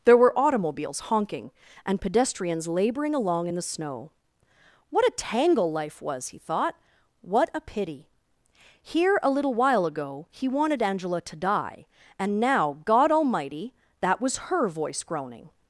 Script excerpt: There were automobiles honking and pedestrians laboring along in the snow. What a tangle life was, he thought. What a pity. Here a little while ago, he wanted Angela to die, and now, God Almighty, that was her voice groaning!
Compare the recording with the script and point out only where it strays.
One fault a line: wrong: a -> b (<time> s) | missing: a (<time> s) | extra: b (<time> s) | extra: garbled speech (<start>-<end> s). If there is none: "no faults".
no faults